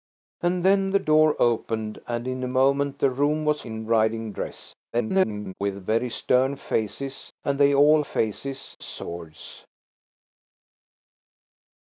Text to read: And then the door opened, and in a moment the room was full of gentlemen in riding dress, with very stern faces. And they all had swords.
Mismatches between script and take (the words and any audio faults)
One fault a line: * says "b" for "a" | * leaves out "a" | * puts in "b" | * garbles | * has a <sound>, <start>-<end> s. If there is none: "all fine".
* leaves out "full of gentlemen"
* garbles
* says "faces" for "had"